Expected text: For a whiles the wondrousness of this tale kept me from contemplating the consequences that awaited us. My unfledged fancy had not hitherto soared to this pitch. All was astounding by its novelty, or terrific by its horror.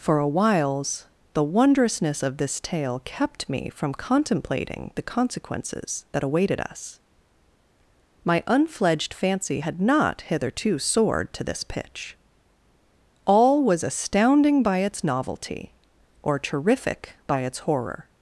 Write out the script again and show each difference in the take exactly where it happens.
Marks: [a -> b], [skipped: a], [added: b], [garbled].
For a whiles the wondrousness of this tale kept me from contemplating the consequences that awaited us. My unfledged fancy had not hitherto soared to this pitch. All was astounding by its novelty, or terrific by its horror.